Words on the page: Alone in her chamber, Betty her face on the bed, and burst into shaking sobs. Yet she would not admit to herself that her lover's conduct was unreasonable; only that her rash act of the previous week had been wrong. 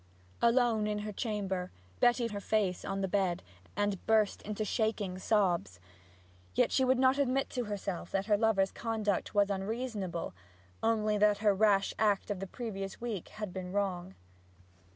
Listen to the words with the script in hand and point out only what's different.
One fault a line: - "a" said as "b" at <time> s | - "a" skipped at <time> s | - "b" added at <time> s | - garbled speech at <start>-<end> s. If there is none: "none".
none